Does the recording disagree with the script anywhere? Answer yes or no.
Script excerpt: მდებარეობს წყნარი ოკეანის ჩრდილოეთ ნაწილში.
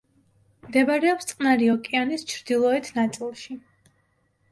no